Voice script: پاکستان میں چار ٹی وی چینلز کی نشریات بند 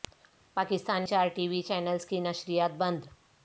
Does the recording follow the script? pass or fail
fail